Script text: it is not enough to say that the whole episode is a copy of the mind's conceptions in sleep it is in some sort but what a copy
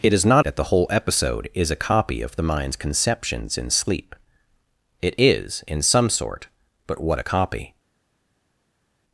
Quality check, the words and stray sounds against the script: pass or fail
fail